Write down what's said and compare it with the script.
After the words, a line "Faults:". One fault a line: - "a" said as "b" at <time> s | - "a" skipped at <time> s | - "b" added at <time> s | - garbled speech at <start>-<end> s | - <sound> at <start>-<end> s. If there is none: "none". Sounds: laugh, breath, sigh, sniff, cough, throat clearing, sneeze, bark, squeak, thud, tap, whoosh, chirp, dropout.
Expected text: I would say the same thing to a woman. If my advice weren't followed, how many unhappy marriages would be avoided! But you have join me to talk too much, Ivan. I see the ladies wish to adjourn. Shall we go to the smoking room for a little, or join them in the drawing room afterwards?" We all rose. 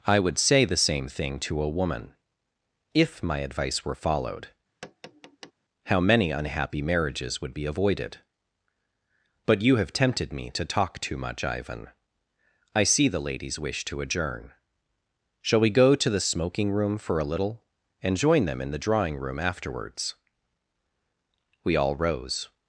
I would say the same thing to a woman. If my advice were followed, how many unhappy marriages would be avoided! But you have tempted me to talk too much, Ivan. I see the ladies wish to adjourn. Shall we go to the smoking room for a little, and join them in the drawing room afterwards?" We all rose.
Faults:
- "weren't" said as "were" at 3.8 s
- tap at 4.8-5.5 s
- "join" said as "tempted" at 9.9 s
- "or" said as "and" at 18.0 s